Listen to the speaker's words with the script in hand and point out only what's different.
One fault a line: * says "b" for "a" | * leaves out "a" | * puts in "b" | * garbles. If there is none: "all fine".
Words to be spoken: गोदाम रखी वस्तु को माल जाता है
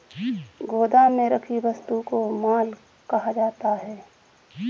* puts in "में"
* puts in "कहा"